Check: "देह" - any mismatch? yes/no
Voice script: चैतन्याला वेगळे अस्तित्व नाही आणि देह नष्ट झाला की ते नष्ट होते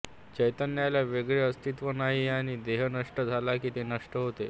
no